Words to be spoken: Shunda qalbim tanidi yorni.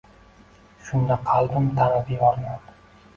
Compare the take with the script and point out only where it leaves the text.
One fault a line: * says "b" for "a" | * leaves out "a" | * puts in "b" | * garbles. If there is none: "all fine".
all fine